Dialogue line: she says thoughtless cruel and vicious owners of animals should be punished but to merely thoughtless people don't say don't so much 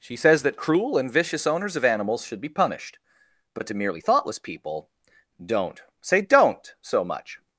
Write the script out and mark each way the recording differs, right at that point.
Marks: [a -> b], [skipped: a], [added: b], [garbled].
she says [thoughtless -> that] cruel and vicious owners of animals should be punished but to merely thoughtless people don't say don't so much